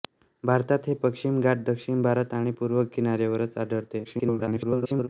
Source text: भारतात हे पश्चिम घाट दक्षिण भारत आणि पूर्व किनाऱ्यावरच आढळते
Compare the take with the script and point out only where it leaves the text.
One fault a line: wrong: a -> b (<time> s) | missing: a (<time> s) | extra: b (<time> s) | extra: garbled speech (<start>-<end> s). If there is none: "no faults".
extra: garbled speech (4.0-5.1 s)